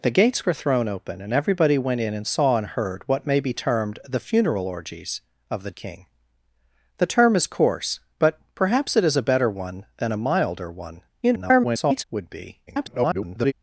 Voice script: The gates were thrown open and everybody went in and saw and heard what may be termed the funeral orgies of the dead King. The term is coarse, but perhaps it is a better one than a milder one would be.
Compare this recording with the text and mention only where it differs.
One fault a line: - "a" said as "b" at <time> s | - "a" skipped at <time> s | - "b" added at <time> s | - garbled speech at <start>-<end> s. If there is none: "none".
- "dead" skipped at 5.7 s
- garbled speech at 11.2-12.0 s
- garbled speech at 12.7-13.5 s